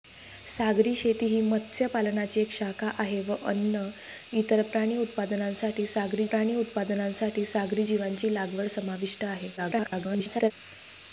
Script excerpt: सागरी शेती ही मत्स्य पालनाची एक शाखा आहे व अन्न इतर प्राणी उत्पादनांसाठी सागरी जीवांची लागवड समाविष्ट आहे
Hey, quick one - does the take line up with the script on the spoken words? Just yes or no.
no